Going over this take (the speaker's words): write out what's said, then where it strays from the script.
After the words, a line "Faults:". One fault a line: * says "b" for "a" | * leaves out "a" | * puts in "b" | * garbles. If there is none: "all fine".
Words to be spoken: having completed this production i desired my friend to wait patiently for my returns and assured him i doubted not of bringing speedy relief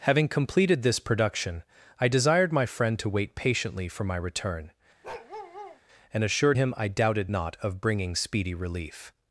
having completed this production i desired my friend to wait patiently for my return and assured him i doubted not of bringing speedy relief
Faults:
* says "return" for "returns"